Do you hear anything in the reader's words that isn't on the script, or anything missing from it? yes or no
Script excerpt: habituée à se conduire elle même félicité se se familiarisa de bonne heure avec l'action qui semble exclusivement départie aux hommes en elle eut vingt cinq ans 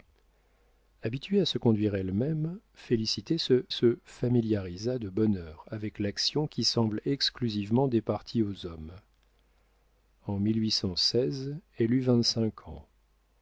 no